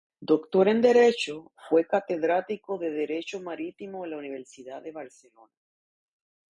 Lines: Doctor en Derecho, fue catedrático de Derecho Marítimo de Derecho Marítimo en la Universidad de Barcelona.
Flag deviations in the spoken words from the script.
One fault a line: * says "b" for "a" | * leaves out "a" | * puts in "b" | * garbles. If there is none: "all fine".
* leaves out "de Derecho Marítimo"